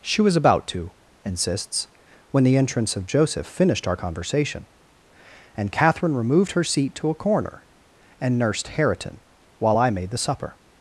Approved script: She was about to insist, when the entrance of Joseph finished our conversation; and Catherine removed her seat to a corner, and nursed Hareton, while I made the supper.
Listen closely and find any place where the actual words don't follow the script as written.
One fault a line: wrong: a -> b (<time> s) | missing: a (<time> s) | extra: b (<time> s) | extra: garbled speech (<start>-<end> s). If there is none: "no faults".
wrong: insist -> insists (1.2 s)